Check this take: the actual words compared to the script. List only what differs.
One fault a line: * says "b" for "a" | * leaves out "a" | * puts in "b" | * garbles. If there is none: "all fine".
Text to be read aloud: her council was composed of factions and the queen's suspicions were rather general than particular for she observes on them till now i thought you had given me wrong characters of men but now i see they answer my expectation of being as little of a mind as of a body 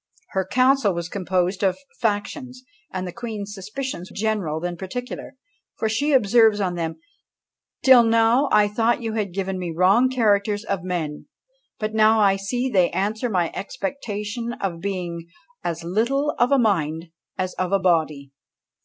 * leaves out "were rather"